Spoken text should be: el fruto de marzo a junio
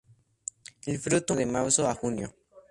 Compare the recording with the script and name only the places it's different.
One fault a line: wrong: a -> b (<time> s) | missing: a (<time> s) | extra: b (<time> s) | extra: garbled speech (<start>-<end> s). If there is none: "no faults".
no faults